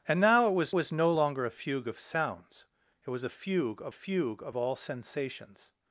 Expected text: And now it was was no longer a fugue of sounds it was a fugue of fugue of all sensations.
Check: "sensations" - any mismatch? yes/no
no